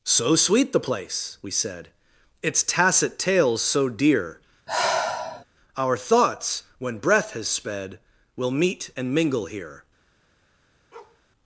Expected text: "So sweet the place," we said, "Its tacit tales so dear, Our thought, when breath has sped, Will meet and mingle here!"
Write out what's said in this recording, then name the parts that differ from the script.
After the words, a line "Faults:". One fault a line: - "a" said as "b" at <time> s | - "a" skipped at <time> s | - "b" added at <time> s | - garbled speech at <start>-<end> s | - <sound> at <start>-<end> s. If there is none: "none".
"So sweet the place," we said, "Its tacit tales so dear, Our thoughts, when breath has sped, Will meet and mingle here!"
Faults:
- sigh at 4.7-5.4 s
- "thought" said as "thoughts" at 6.0 s
- bark at 10.9-11.2 s